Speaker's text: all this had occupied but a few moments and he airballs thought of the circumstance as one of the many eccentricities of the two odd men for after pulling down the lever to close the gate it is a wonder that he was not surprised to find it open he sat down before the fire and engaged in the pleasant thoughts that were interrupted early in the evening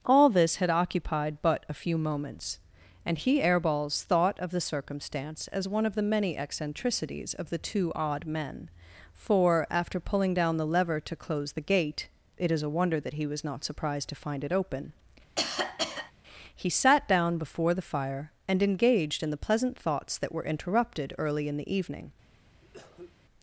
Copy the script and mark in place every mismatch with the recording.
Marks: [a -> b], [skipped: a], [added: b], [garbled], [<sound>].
all this had occupied but a few moments and he airballs thought of the circumstance as one of the many eccentricities of the two odd men for after pulling down the lever to close the gate it is a wonder that he was not surprised to find it open [cough] he sat down before the fire and engaged in the pleasant thoughts that were interrupted early in the evening [cough]